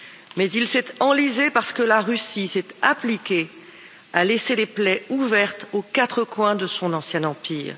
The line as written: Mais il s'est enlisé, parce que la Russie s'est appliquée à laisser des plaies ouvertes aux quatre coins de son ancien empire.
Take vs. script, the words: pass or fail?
pass